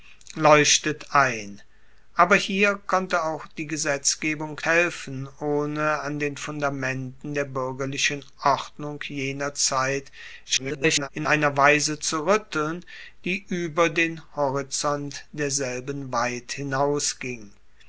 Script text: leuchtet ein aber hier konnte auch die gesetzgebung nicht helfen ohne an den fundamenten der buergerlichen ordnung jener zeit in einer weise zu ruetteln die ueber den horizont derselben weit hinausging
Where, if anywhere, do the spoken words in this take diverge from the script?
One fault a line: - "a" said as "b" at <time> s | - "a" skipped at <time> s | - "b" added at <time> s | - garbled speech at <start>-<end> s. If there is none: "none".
- "nicht" skipped at 4.6 s
- garbled speech at 10.4-11.1 s